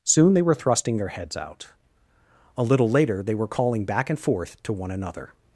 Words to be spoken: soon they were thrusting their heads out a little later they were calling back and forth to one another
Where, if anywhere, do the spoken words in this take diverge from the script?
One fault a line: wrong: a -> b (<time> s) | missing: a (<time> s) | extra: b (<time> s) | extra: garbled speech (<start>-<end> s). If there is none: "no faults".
no faults